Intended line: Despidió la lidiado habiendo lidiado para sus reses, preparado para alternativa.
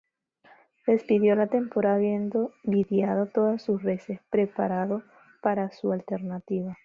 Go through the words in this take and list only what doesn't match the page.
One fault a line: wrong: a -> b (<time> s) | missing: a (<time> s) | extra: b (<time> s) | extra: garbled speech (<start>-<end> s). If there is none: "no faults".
wrong: lidiado -> temporada (1.4 s)
wrong: para -> todas (3.2 s)
extra: su (5.7 s)